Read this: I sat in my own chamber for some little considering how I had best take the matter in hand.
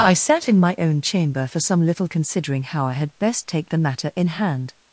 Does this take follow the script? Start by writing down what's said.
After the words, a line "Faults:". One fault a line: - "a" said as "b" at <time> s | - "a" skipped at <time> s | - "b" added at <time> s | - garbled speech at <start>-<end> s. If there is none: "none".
I sat in my own chamber for some little considering how I had best take the matter in hand.
Faults:
none